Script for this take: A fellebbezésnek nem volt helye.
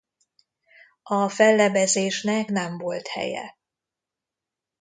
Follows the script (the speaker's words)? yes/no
yes